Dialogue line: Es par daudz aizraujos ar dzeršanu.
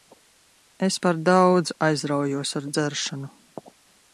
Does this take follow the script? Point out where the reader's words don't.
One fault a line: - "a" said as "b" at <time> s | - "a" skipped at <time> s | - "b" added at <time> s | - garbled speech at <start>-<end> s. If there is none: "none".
none